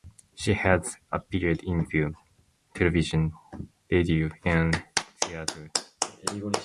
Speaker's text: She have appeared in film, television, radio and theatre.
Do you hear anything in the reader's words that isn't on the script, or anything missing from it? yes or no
yes